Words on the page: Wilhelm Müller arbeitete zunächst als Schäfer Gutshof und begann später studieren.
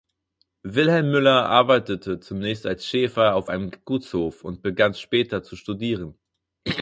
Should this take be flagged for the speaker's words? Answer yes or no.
yes